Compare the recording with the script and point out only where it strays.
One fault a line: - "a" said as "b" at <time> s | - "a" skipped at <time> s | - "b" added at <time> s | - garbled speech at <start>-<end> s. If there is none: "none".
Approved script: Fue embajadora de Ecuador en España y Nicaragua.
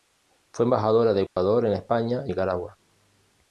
none